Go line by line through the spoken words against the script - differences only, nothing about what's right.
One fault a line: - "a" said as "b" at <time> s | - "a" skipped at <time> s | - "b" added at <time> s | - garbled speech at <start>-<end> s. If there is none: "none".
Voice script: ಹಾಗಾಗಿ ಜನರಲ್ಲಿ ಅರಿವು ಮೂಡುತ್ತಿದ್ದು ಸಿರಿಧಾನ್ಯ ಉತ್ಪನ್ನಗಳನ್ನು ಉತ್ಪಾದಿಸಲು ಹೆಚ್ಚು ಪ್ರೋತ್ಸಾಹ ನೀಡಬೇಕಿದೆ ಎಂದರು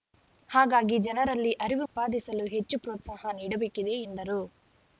- "ಮೂಡುತ್ತಿದ್ದು ಸಿರಿಧಾನ್ಯ ಉತ್ಪನ್ನಗಳನ್ನು" skipped at 1.9 s